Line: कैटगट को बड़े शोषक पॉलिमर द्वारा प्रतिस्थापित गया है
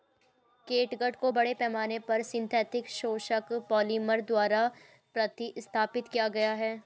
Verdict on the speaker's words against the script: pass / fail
fail